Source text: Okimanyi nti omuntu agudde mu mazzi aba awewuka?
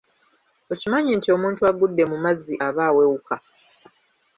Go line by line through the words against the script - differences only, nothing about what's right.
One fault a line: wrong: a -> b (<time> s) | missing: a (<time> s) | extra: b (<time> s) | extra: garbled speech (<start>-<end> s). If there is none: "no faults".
no faults